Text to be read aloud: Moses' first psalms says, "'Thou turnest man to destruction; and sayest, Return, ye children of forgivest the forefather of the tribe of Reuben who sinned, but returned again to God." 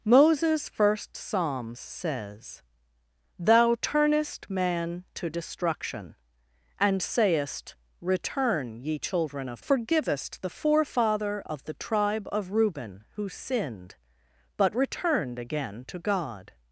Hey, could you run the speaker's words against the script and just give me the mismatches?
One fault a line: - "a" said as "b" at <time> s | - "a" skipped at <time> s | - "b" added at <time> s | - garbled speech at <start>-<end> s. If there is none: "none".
none